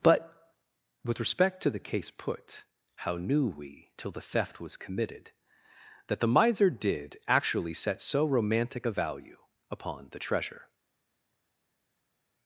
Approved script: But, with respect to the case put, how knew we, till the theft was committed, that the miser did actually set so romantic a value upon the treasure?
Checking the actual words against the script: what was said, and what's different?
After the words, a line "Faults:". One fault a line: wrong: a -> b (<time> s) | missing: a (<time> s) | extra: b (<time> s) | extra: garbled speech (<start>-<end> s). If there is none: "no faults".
But, with respect to the case put, how knew we, till the theft was committed, that the miser did actually set so romantic a value upon the treasure?
Faults:
no faults